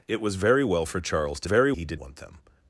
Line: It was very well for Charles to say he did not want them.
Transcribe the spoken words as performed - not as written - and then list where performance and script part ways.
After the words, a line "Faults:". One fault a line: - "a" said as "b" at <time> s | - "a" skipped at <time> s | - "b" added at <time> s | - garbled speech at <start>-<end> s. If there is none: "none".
It was very well for Charles to very he did want them.
Faults:
- "say" said as "very" at 1.4 s
- "not" skipped at 2.0 s